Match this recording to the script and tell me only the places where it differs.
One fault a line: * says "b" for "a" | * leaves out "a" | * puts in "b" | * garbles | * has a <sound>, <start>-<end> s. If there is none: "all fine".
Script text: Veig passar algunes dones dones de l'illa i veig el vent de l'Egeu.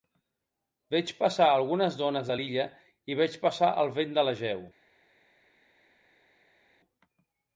* leaves out "dones"
* puts in "passar"